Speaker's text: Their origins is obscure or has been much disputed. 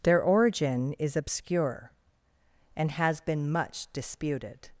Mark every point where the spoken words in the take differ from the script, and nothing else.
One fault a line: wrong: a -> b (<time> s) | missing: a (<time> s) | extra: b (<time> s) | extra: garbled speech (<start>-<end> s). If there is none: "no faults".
wrong: origins -> origin (0.2 s)
wrong: or -> and (2.8 s)